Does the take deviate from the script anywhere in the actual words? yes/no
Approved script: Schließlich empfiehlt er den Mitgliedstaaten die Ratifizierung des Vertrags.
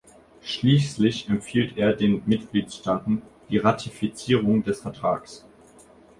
no